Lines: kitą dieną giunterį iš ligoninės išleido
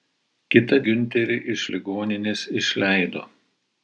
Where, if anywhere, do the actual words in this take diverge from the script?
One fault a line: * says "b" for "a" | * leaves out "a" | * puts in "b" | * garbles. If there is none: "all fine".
* leaves out "dieną"